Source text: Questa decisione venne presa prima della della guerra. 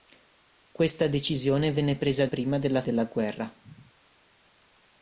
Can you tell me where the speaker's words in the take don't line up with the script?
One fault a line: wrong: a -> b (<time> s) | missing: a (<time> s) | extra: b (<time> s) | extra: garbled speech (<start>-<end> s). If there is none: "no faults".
no faults